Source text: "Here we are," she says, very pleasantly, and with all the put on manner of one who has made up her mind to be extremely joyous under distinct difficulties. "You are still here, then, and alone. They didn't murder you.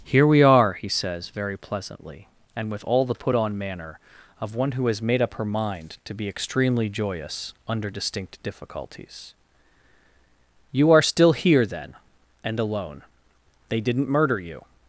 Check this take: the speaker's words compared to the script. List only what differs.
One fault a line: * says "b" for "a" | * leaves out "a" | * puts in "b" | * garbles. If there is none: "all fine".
* says "he" for "she"